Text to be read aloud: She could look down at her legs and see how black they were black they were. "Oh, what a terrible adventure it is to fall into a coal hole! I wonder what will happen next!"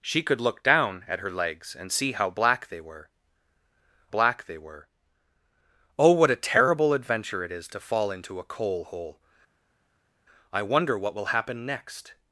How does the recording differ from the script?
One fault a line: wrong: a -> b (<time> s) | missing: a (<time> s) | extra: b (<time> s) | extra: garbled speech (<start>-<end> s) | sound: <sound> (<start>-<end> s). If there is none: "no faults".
no faults